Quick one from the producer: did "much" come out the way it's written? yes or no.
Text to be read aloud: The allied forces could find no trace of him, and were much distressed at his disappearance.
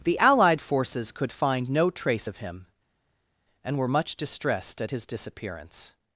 yes